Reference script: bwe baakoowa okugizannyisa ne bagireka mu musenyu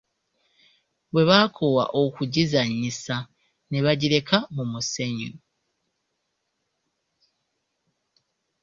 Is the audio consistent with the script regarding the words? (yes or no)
yes